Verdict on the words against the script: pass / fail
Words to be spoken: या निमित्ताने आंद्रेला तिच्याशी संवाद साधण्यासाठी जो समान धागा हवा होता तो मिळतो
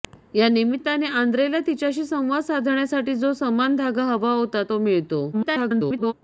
fail